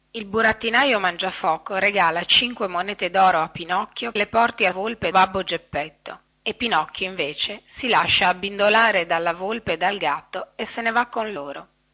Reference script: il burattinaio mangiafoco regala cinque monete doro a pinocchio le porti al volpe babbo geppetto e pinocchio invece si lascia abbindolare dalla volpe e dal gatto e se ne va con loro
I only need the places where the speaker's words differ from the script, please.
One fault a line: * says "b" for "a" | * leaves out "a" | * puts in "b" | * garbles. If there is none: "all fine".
all fine